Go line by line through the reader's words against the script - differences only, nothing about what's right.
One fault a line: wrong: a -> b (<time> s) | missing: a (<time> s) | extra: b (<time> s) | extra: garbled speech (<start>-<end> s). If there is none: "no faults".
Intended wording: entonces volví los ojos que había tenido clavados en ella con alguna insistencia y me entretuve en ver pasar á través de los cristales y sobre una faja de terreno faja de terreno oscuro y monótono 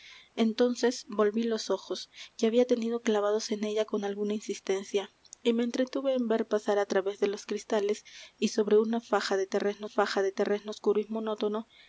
no faults